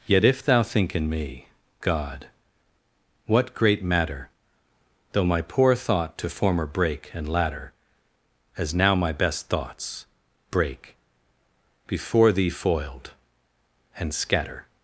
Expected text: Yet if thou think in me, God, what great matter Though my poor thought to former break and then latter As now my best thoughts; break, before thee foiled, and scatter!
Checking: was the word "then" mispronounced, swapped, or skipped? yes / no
yes